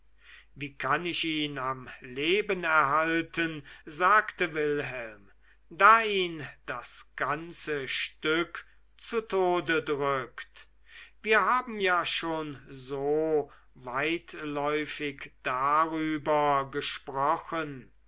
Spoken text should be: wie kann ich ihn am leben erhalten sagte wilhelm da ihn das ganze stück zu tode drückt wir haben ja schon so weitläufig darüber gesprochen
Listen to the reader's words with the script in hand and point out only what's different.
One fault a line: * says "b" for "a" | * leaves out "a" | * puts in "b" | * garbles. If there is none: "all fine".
all fine